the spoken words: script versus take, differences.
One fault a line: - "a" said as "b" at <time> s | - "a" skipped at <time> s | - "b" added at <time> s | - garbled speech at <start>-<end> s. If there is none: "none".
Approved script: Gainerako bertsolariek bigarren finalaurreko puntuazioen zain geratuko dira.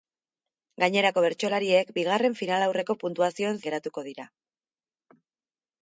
- "zain" skipped at 3.6 s